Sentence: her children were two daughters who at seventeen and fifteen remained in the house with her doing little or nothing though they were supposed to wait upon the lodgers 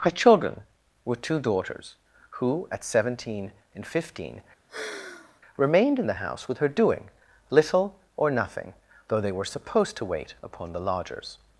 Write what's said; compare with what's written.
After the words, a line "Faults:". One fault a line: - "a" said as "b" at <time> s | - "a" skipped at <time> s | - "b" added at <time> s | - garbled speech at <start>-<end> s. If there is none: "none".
her children were two daughters who at seventeen and fifteen remained in the house with her doing little or nothing though they were supposed to wait upon the lodgers
Faults:
none